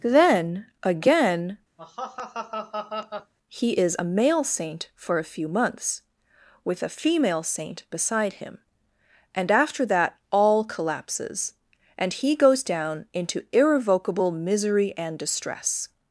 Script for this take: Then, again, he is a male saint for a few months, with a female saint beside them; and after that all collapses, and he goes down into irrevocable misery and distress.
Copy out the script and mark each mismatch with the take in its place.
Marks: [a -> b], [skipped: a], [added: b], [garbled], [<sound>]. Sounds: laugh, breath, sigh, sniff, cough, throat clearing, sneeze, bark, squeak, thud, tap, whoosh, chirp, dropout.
Then, again, [laugh] he is a male saint for a few months, with a female saint beside [them; -> him] and after that all collapses, and he goes down into irrevocable misery and distress.